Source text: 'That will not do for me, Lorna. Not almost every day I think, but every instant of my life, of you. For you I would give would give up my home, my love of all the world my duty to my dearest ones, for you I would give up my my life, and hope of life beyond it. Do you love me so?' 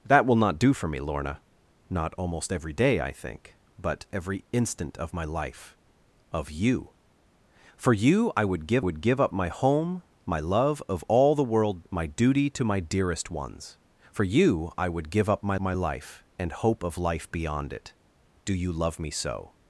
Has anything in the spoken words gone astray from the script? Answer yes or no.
no